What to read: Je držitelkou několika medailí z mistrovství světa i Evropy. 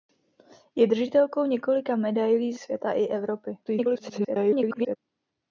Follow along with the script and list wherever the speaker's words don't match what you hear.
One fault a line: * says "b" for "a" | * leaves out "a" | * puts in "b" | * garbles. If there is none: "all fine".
* leaves out "mistrovství"
* garbles